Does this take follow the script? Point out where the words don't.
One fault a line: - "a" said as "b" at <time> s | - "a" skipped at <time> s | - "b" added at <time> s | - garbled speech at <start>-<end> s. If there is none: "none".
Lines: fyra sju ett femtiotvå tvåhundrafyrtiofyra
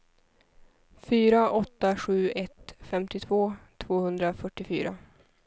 - "åtta" added at 1.5 s